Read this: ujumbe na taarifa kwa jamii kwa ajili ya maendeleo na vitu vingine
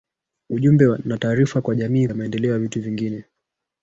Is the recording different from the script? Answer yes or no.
yes